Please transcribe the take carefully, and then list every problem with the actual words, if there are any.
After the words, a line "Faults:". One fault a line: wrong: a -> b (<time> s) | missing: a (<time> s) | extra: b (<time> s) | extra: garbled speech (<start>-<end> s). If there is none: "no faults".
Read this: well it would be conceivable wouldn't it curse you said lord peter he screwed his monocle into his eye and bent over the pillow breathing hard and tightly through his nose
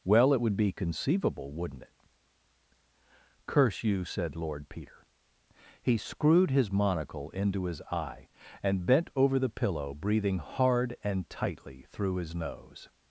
well it would be conceivable wouldn't it curse you said lord peter he screwed his monocle into his eye and bent over the pillow breathing hard and tightly through his nose
Faults:
no faults